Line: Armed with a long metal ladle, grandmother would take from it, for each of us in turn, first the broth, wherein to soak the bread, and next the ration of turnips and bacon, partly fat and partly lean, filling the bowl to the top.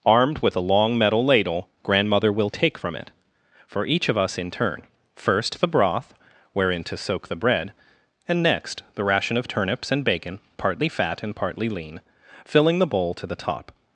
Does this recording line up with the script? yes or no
no